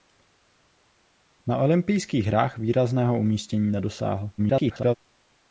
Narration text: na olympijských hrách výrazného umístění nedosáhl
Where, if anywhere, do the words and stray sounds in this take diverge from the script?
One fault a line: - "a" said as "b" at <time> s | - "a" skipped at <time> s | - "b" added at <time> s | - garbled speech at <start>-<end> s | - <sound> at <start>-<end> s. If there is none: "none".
- garbled speech at 4.4-4.9 s